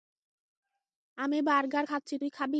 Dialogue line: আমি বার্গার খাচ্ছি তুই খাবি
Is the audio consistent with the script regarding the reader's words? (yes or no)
yes